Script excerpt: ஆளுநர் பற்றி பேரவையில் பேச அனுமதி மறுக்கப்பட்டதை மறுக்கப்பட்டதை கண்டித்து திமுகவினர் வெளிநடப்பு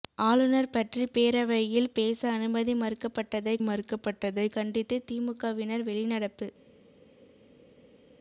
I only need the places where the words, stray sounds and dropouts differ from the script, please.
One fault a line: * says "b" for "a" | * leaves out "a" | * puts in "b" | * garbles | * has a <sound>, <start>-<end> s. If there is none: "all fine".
all fine